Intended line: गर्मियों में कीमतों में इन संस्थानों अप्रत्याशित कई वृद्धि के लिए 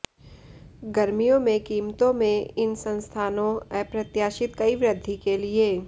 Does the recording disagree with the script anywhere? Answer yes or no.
no